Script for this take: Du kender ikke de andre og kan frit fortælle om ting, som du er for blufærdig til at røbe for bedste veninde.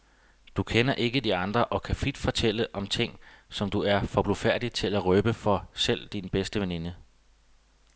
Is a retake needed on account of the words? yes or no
yes